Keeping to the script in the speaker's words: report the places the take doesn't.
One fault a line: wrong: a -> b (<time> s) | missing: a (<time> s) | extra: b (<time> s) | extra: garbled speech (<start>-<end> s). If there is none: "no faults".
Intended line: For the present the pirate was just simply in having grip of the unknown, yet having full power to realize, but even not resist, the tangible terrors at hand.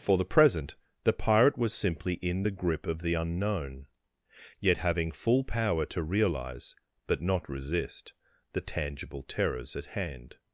missing: just (1.8 s)
wrong: having -> the (2.4 s)
missing: even (7.2 s)